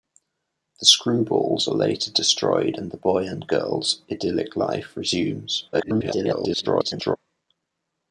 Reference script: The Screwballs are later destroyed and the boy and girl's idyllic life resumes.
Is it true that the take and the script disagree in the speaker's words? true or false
true